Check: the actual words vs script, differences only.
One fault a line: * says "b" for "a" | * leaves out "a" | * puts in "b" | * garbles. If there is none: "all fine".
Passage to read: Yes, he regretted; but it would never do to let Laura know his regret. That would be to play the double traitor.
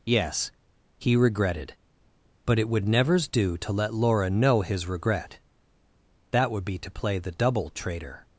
* says "nevers" for "never"